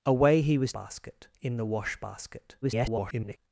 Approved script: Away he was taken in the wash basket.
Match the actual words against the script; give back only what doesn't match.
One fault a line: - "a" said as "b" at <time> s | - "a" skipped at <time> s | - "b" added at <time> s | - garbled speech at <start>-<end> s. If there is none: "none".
- "taken" said as "basket" at 0.7 s
- garbled speech at 2.6-3.4 s